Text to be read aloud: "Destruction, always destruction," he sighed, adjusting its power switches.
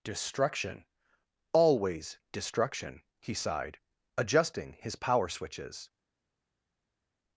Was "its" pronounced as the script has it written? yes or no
no